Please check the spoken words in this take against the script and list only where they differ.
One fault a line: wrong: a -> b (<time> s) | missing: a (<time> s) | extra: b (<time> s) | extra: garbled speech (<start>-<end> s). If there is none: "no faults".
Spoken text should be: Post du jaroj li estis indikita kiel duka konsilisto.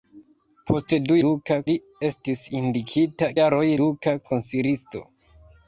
wrong: jaroj -> duka (1.3 s)
wrong: kiel -> jaroj (3.3 s)